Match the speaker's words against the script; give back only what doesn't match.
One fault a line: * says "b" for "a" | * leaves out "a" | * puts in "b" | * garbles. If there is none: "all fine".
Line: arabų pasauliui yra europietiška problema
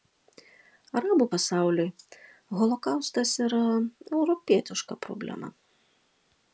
* puts in "holokaustas"